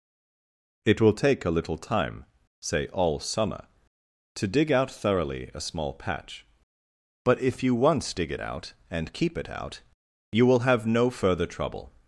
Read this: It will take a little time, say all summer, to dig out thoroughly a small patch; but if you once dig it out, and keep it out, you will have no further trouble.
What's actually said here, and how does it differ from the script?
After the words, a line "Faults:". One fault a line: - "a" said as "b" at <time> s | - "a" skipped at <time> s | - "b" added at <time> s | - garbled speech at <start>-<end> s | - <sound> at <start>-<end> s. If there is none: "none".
It will take a little time, say all summer, to dig out thoroughly a small patch; but if you once dig it out, and keep it out, you will have no further trouble.
Faults:
none